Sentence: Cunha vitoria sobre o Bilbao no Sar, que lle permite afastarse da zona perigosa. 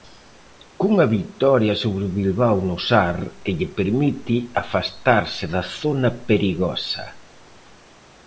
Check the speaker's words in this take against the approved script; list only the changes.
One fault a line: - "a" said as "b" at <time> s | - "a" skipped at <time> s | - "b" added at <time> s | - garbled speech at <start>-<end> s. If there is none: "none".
none